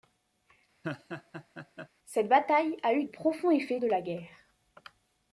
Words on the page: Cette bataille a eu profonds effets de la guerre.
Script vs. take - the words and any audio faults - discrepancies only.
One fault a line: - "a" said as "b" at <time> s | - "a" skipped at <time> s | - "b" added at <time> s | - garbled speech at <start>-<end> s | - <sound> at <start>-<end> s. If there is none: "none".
- laugh at 0.8-1.9 s